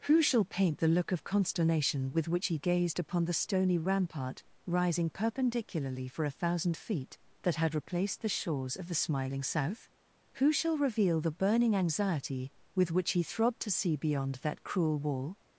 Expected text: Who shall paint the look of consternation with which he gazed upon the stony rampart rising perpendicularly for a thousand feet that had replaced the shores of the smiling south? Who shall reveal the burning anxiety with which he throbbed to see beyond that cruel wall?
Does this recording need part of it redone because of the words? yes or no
no